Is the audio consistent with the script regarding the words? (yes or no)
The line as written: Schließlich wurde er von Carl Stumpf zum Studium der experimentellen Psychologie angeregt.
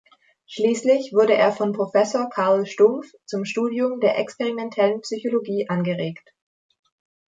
no